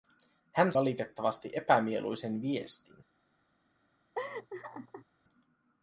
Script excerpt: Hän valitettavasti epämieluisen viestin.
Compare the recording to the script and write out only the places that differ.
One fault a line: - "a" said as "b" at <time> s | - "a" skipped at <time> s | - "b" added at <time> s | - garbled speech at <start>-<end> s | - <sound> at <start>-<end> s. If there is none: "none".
- laugh at 4.2-5.1 s